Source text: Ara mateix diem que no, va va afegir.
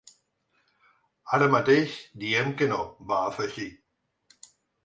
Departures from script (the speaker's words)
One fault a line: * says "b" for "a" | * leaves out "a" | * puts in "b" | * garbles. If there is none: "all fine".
* leaves out "va"